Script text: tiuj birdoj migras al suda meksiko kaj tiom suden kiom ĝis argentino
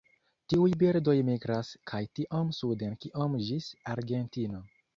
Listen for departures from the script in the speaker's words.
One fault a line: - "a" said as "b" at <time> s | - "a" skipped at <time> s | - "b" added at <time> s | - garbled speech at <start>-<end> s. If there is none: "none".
- "al suda meksiko" skipped at 1.7 s